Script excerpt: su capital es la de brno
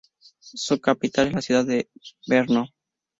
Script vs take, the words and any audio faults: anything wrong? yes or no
yes